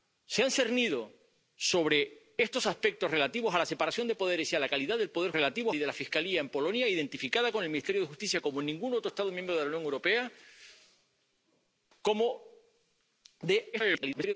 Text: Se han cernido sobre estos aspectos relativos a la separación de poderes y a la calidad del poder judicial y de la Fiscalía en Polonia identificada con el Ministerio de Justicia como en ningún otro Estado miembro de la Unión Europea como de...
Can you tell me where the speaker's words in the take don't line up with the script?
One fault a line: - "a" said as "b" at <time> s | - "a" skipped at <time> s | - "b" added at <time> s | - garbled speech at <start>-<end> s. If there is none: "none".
- "judicial" said as "relativos" at 5.3 s
- garbled speech at 13.7-14.3 s